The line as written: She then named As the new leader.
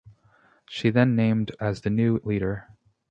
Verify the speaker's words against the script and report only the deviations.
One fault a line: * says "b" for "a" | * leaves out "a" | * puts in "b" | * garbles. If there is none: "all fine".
all fine